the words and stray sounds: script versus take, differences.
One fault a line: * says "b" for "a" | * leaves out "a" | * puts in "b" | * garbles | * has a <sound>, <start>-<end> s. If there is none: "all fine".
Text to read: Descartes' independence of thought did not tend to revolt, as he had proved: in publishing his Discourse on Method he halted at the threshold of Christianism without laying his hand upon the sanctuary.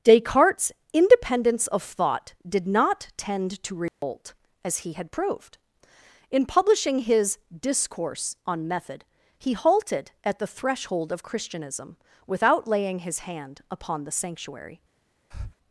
* has a dropout, 3.9-4.0 s
* has a breath, 15.3-15.6 s